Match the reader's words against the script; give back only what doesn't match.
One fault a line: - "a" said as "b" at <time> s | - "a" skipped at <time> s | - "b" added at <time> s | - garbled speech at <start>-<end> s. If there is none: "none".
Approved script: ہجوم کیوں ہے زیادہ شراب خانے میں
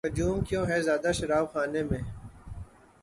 none